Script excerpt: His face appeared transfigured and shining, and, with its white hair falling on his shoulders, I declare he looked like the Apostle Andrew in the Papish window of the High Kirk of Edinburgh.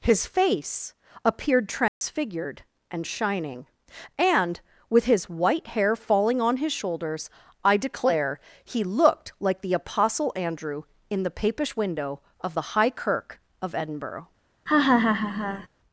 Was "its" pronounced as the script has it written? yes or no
no